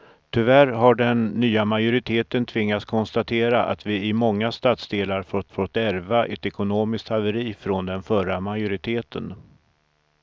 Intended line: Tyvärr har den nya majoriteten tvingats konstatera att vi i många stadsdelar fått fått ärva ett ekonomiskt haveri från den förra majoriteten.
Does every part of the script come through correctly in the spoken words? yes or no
yes